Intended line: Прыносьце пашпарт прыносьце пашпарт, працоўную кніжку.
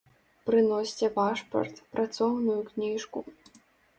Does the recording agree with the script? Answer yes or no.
no